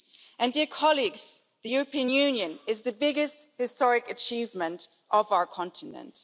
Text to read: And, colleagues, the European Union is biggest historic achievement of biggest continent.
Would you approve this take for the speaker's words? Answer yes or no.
no